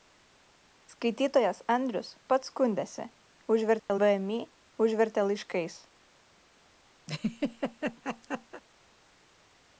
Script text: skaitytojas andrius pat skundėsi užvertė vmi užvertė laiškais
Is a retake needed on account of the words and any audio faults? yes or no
yes